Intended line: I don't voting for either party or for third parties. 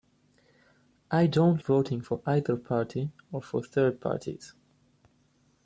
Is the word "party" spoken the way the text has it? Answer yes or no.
yes